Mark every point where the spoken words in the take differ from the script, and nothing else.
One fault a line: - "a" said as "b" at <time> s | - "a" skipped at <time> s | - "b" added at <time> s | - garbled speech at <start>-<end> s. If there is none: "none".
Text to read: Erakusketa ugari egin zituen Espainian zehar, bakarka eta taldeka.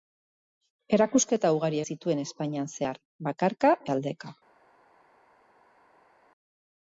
- "egin" skipped at 1.8 s
- "eta" skipped at 3.7 s